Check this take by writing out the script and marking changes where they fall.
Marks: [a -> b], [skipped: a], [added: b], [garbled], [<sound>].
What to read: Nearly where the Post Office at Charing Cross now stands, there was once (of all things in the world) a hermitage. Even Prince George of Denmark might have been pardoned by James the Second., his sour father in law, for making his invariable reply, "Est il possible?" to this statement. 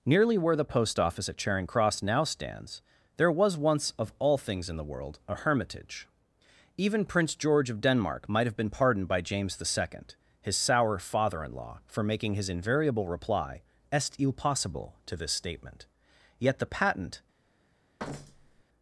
Nearly where the Post Office at Charing Cross now stands, there was once (of all things in the world) a hermitage. Even Prince George of Denmark might have been pardoned by James the Second., his sour father in law, for making his invariable reply, "Est il possible?" to this statement. [added: Yet the patent] [thud]